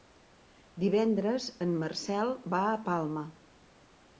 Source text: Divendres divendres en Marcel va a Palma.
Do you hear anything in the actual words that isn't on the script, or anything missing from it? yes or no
yes